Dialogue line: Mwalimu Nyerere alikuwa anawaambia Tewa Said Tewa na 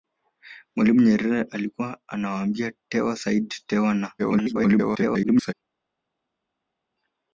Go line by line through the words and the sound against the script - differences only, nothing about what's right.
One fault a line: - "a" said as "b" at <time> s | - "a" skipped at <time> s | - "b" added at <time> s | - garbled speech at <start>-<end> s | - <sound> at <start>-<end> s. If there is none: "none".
- garbled speech at 4.2-5.5 s